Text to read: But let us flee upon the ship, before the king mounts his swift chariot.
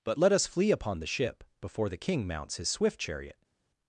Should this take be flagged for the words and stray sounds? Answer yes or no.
no